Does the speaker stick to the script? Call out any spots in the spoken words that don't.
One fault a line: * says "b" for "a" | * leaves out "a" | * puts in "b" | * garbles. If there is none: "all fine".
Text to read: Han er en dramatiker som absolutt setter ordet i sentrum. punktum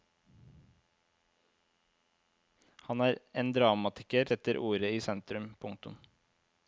* leaves out "som absolutt"